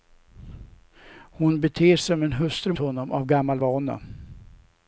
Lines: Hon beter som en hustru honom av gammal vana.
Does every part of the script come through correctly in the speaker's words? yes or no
yes